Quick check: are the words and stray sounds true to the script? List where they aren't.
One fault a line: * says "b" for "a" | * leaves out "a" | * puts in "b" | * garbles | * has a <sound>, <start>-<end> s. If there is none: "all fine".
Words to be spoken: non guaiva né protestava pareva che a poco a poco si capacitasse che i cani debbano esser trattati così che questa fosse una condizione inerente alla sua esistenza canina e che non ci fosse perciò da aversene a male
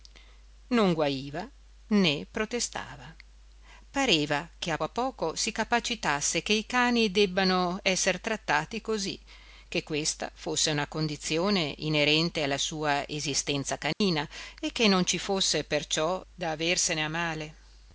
* leaves out "poco"
* has a dropout, 13.9-14.0 s